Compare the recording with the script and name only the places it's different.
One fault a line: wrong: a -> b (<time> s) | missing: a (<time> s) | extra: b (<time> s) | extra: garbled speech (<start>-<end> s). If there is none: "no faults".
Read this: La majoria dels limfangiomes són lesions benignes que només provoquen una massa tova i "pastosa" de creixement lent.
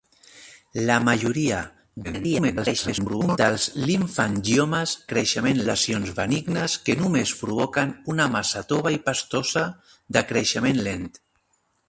extra: garbled speech (2.0-3.4 s)
wrong: són -> creixement (5.1 s)